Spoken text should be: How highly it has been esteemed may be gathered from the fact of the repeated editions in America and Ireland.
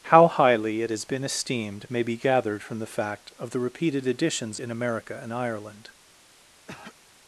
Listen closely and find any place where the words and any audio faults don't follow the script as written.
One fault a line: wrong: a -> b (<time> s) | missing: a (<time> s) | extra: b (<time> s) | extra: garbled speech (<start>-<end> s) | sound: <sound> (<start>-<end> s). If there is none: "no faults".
sound: throat clearing (6.7-7.0 s)